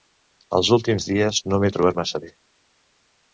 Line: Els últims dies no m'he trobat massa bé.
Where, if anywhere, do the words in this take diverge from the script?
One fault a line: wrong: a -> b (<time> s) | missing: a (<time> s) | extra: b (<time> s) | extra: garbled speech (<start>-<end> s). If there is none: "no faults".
no faults